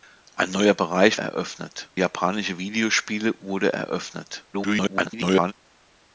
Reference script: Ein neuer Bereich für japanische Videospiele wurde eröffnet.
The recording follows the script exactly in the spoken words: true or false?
false